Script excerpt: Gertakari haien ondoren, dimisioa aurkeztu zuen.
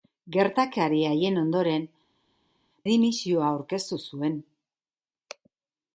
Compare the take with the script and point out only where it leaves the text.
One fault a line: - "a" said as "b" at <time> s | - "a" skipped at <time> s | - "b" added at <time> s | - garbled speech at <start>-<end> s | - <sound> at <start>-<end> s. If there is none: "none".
none